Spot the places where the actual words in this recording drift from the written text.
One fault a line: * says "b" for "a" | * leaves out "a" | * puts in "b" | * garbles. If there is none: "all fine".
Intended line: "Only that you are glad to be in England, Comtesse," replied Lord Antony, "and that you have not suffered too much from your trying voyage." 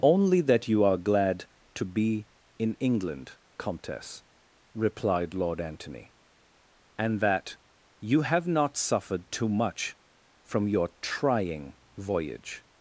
all fine